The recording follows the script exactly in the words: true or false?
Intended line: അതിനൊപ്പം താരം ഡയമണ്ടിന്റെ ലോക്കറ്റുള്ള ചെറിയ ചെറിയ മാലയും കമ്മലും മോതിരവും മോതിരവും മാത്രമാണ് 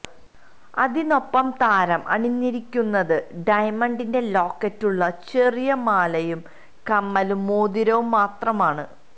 false